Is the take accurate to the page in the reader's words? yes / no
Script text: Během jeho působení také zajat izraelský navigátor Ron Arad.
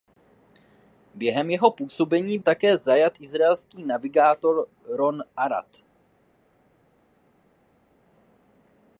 yes